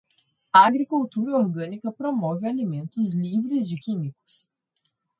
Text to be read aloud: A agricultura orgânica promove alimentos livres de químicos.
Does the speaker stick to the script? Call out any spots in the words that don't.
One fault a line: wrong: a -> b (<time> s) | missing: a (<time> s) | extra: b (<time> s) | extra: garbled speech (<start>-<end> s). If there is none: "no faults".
no faults